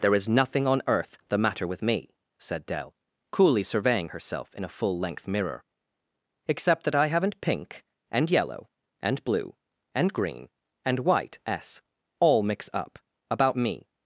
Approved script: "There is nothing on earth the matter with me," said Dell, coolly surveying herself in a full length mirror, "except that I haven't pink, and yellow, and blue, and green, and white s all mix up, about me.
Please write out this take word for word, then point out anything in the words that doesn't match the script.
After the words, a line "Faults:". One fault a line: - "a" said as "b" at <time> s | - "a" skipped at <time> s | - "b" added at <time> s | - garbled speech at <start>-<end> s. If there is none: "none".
"There is nothing on earth the matter with me," said Dell, coolly surveying herself in a full length mirror, "except that I haven't pink, and yellow, and blue, and green, and white s all mix up, about me.
Faults:
none